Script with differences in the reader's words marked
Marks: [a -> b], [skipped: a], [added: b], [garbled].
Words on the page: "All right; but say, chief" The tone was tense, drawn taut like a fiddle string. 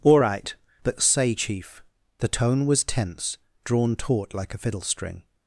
"All right; but say, chief" The tone was tense, drawn taut like a fiddle string.